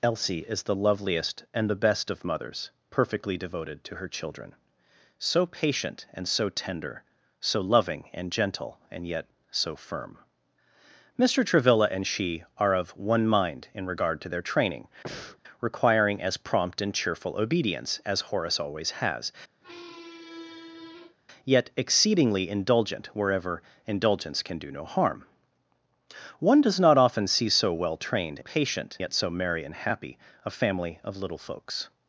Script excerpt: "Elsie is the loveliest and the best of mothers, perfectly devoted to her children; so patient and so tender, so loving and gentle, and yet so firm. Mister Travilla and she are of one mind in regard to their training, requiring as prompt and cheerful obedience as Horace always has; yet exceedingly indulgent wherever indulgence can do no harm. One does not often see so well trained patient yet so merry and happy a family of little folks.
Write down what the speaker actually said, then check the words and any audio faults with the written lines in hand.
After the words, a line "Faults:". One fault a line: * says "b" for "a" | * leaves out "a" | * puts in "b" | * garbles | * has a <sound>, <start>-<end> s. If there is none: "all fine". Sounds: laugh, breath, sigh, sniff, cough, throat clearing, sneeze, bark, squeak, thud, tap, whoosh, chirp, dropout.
"Elsie is the loveliest and the best of mothers, perfectly devoted to her children; so patient and so tender, so loving and gentle, and yet so firm. Mister Travilla and she are of one mind in regard to their training, requiring as prompt and cheerful obedience as Horace always has; yet exceedingly indulgent wherever indulgence can do no harm. One does not often see so well trained patient yet so merry and happy a family of little folks.
Faults:
* has a breath, 15.0-15.4 s
* has a squeak, 19.6-21.2 s